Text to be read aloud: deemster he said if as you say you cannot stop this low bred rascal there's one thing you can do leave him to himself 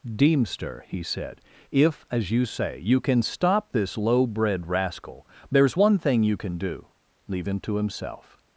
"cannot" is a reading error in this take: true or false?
true